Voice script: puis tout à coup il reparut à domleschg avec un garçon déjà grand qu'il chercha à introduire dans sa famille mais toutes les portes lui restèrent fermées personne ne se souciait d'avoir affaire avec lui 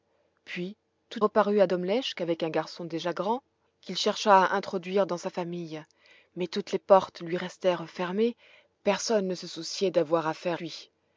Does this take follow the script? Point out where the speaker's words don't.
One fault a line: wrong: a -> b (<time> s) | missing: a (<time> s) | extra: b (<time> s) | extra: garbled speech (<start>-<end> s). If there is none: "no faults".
missing: à coup il (1.2 s)
missing: avec (10.6 s)